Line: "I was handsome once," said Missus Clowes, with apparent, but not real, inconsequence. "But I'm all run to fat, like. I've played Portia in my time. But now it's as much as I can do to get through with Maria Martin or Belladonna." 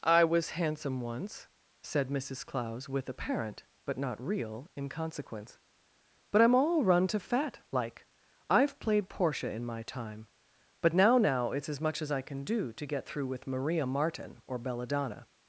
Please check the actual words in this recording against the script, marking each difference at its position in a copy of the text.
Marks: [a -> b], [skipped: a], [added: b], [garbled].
"I was handsome once," said Missus Clowes, with apparent, but not real, inconsequence. "But I'm all run to fat, like. I've played Portia in my time. But now [added: now] it's as much as I can do to get through with Maria Martin or Belladonna."